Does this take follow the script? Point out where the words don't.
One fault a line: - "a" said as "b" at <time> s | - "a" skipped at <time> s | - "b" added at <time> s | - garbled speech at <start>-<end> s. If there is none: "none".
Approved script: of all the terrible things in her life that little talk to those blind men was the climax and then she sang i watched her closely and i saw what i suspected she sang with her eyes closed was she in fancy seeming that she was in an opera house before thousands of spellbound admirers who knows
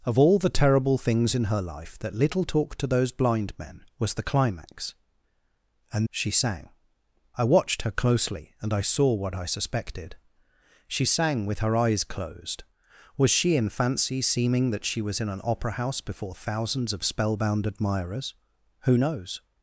- "then" skipped at 6.1 s